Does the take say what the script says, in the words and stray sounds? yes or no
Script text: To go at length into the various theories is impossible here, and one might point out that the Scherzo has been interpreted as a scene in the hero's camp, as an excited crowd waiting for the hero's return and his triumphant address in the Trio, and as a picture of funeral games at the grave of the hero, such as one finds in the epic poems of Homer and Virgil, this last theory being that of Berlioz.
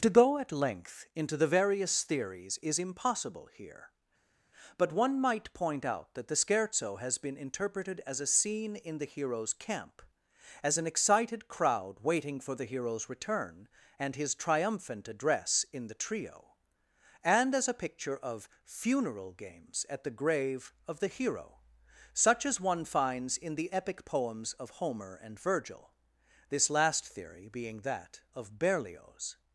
no